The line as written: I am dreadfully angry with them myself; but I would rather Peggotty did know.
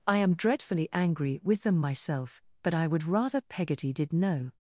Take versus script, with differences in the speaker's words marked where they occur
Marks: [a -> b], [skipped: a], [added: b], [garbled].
I am dreadfully angry with them myself; but I would rather Peggotty did know.